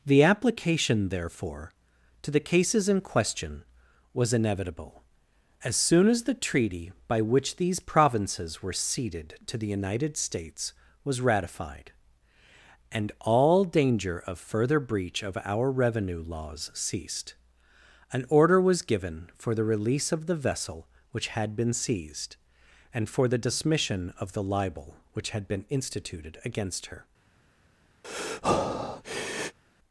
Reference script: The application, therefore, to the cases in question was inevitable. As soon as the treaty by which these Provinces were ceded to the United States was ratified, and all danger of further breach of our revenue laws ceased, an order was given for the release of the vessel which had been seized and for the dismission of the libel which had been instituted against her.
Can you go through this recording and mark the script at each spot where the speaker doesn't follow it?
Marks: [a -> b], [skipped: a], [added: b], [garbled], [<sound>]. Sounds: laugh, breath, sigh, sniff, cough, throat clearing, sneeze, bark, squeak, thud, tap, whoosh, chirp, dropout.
The application, therefore, to the cases in question was inevitable. As soon as the treaty by which these Provinces were ceded to the United States was ratified, and all danger of further breach of our revenue laws ceased, an order was given for the release of the vessel which had been seized and for the dismission of the libel which had been instituted against her. [breath]